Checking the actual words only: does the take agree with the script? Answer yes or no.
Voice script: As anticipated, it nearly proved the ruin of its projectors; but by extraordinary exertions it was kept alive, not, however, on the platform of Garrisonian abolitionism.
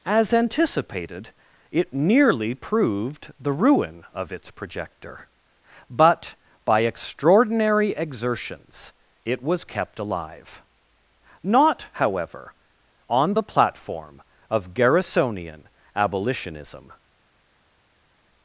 no